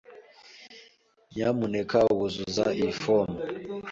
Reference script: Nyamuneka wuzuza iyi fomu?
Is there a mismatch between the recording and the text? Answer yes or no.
no